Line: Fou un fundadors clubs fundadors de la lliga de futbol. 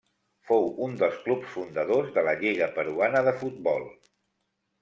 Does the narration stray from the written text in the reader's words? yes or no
yes